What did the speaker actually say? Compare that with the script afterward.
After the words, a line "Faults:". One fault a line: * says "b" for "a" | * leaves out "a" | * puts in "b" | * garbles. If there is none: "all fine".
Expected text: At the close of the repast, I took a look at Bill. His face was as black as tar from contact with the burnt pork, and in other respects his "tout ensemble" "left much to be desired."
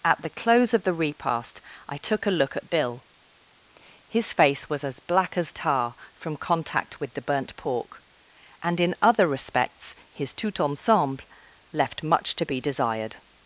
At the close of the repast, I took a look at Bill. His face was as black as tar from contact with the burnt pork, and in other respects his "tout ensemble" "left much to be desired."
Faults:
all fine